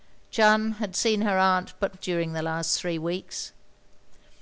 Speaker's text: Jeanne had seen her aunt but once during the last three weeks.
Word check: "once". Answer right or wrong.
wrong